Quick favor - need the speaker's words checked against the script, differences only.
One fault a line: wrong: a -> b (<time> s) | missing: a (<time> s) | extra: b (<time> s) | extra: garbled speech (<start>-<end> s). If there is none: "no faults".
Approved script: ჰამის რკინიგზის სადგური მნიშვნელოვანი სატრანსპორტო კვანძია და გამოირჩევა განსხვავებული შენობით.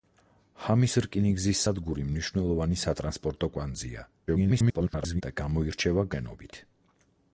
extra: garbled speech (4.3-5.2 s)
missing: განსხვავებული (6.1 s)